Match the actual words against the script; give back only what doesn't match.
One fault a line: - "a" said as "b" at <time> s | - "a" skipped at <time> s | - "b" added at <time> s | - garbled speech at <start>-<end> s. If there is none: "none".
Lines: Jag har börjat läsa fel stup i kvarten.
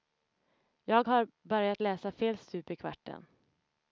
none